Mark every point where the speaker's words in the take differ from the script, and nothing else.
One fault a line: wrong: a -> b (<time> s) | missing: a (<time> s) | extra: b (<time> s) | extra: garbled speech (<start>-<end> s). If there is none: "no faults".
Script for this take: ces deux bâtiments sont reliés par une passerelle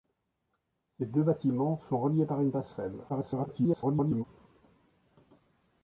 extra: garbled speech (3.1-4.2 s)